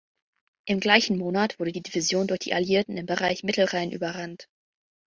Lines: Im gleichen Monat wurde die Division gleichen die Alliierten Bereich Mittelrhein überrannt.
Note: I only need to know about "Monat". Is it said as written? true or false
true